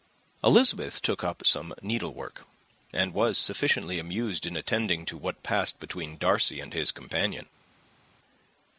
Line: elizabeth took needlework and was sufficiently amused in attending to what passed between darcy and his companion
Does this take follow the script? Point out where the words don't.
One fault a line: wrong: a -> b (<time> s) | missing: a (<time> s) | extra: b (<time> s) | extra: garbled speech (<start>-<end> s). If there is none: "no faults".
extra: up some (1.2 s)